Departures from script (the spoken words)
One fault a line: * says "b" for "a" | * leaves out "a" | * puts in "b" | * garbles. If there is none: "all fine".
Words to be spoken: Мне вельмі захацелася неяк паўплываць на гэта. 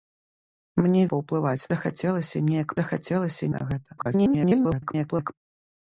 * says "паўплываць" for "вельмі"
* says "захацелася" for "паўплываць"
* garbles